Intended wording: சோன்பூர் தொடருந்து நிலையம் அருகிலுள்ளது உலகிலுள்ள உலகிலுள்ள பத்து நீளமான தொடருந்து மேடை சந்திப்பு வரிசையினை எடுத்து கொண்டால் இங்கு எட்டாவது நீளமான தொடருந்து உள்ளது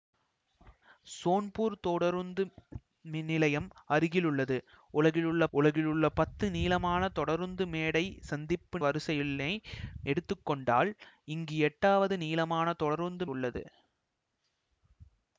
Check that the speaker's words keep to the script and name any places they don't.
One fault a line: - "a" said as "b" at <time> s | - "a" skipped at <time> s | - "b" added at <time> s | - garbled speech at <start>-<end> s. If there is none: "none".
none